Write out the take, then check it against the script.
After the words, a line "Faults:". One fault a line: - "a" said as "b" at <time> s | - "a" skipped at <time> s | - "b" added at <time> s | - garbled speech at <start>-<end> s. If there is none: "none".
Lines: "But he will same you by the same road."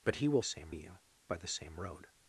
"But he will same you by the same road."
Faults:
none